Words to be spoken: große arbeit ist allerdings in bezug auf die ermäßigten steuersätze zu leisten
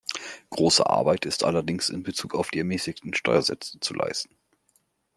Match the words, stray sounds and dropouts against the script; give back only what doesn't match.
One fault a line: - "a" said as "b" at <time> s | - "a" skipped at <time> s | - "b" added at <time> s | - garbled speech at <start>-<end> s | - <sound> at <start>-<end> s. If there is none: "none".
none